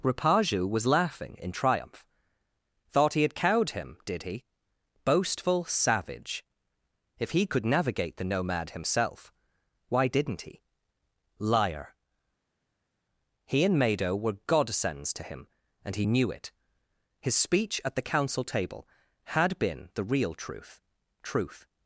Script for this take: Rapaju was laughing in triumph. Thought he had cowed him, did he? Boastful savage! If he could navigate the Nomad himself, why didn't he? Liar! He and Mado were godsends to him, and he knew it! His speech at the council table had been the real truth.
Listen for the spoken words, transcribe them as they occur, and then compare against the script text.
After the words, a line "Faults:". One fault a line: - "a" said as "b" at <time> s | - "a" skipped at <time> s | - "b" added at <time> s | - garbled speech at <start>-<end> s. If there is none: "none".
Rapaju was laughing in triumph. Thought he had cowed him, did he? Boastful savage! If he could navigate the Nomad himself, why didn't he? Liar! He and Mado were godsends to him, and he knew it! His speech at the council table had been the real truth truth.
Faults:
- "truth" added at 21.2 s